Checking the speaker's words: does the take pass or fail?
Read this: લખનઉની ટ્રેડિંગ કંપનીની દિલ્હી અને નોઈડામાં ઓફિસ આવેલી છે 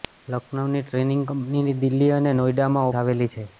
fail